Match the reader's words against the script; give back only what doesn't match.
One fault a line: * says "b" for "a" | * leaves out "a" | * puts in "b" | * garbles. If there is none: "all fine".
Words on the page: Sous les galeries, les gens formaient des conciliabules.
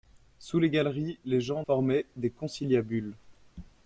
all fine